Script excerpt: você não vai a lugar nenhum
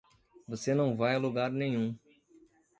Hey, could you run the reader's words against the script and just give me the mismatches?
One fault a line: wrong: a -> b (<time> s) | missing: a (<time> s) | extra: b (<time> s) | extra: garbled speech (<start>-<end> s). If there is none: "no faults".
no faults